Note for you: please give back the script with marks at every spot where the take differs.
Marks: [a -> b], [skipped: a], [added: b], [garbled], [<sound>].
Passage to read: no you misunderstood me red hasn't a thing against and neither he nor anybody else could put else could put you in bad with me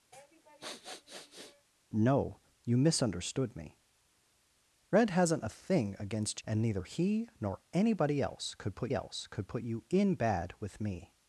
[sniff] no you misunderstood me red hasn't a thing against and neither he nor anybody else could put else could put you in bad with me